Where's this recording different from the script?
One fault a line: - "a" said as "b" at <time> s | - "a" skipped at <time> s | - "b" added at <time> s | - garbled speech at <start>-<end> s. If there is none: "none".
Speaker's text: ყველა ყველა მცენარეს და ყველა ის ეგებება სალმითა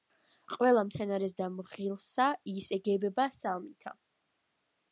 - "ყველა" skipped at 0.8 s
- "ყველა" said as "მღილსა" at 1.6 s